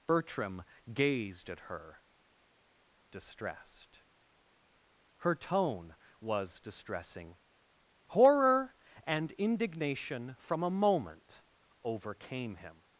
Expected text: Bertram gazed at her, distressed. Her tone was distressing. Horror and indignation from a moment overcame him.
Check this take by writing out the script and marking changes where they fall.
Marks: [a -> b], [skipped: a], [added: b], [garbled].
Bertram gazed at her, distressed. Her tone was distressing. Horror and indignation from a moment overcame him.